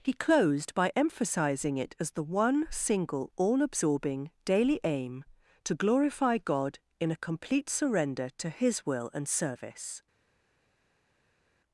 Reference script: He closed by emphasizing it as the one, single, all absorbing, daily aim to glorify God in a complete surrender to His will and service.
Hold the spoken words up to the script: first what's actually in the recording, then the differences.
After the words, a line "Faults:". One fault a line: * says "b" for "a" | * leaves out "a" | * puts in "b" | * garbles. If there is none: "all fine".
He closed by emphasizing it as the one, single, all absorbing, daily aim to glorify God in a complete surrender to His will and service.
Faults:
all fine